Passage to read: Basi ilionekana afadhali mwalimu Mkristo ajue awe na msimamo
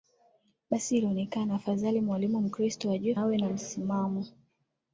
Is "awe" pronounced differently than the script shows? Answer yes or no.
no